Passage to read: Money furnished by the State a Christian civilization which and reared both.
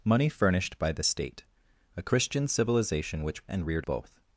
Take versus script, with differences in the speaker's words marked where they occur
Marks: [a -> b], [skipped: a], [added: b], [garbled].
Money furnished by the State a Christian civilization which and reared both.